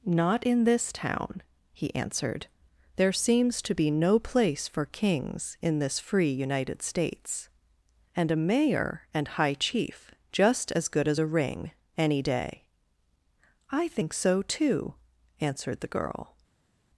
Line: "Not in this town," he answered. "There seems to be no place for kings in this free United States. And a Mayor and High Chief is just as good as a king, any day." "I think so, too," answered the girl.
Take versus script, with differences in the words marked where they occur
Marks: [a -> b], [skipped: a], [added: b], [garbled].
"Not in this town," he answered. "There seems to be no place for kings in this free United States. And a Mayor and High Chief [skipped: is] just as good as a [king, -> ring] any day." "I think so, too," answered the girl.